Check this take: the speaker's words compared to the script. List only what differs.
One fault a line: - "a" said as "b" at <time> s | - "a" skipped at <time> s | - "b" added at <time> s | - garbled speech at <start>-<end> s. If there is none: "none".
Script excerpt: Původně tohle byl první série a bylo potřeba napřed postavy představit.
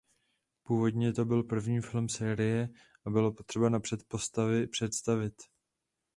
- "tohle" said as "to" at 1.1 s
- "film" added at 1.8 s